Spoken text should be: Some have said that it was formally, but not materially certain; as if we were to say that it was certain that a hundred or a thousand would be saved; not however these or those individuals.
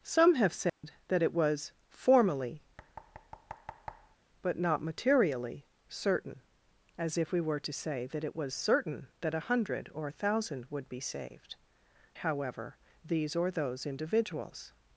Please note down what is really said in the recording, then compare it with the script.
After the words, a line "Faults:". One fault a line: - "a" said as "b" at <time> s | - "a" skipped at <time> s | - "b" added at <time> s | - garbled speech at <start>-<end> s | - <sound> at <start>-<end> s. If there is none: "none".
Some have said that it was formally, but not materially certain; as if we were to say that it was certain that a hundred or a thousand would be saved; however these or those individuals.
Faults:
- dropout at 0.7-0.8 s
- thud at 2.8-4.2 s
- "not" skipped at 11.6 s